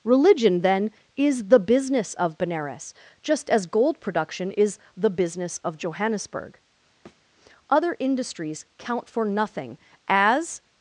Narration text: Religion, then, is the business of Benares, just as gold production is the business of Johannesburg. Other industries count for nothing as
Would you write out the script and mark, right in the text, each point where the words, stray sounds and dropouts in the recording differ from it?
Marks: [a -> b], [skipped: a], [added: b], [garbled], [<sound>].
Religion, then, is the business of Benares, just as gold production is the business of Johannesburg. [thud] Other industries count for nothing as